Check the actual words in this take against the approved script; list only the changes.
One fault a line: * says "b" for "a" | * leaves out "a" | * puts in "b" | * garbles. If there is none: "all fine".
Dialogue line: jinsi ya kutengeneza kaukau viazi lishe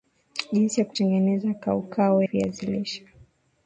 all fine